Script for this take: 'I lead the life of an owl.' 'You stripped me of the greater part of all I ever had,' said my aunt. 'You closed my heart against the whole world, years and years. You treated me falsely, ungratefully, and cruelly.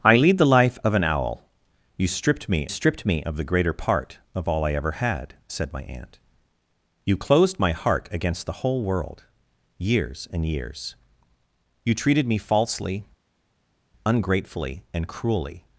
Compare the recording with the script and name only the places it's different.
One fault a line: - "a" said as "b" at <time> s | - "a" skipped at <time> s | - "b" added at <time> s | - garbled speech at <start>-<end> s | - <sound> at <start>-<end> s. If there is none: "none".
- "stripped me" added at 2.7 s